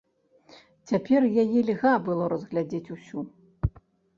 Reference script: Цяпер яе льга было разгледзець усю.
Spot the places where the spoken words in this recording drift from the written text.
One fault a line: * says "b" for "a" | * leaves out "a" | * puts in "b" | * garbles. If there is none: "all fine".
all fine